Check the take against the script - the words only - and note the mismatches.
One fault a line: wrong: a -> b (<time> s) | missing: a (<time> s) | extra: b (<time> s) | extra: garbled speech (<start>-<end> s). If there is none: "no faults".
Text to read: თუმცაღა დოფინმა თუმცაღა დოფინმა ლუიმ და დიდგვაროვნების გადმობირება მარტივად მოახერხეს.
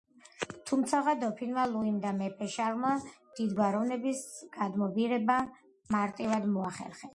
wrong: თუმცაღა დოფინმა ლუიმ და -> ლუიმ და მეფე შარლმა (1.7 s)